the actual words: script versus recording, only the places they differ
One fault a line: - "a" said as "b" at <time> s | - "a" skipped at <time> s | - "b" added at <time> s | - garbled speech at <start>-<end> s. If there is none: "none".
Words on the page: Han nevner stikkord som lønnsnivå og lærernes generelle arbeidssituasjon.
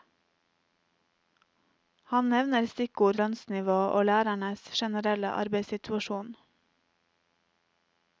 - "som" skipped at 3.2 s